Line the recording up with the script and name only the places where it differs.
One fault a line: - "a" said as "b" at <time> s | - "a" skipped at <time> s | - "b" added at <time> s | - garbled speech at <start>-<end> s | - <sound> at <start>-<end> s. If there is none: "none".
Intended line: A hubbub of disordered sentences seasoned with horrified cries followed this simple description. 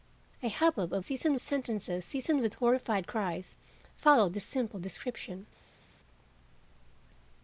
- "disordered" said as "seasoned" at 1.0 s